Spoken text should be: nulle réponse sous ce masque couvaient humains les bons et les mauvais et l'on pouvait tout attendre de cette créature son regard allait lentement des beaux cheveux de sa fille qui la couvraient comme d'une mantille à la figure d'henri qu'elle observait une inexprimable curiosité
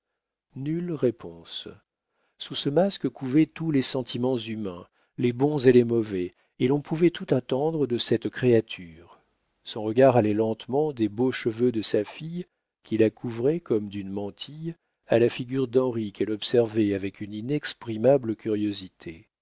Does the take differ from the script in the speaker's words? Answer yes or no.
yes